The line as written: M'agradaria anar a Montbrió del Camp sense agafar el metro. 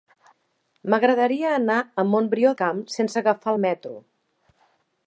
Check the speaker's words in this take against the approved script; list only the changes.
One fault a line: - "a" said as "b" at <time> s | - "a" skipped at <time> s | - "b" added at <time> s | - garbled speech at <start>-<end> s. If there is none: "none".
- "del" skipped at 2.5 s